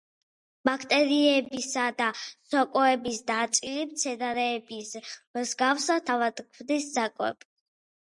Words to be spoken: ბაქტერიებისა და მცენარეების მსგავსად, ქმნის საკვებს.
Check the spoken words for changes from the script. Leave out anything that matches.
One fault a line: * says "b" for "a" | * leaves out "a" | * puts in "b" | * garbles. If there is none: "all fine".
* puts in "სოკოების ნაწილი"
* puts in "თავად"